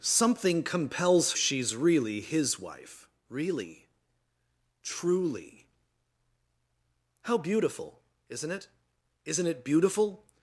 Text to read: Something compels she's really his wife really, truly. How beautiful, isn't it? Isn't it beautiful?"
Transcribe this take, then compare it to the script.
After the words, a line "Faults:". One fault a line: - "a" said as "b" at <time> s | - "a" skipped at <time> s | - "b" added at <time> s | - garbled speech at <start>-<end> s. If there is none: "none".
Something compels she's really his wife really, truly. How beautiful, isn't it? Isn't it beautiful?"
Faults:
none